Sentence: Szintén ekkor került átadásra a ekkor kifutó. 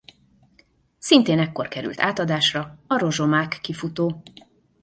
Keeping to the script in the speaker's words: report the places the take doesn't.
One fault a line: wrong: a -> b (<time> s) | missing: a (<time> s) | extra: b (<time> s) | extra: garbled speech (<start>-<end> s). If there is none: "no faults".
wrong: ekkor -> rozsomák (3.0 s)